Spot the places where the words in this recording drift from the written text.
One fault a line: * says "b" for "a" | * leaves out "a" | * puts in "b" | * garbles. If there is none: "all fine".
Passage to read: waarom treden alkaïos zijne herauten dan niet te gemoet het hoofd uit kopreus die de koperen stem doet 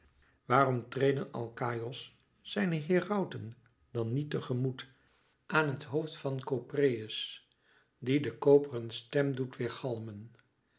* puts in "aan"
* says "van" for "uit"